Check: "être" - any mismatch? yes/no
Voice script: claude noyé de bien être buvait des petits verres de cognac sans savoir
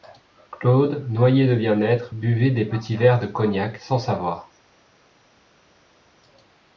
no